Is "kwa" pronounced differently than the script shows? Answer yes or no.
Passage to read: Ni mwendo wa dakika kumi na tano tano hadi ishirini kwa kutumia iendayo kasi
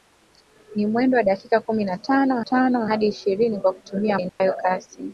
no